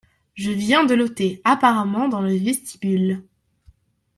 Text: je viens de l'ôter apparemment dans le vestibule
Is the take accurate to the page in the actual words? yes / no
yes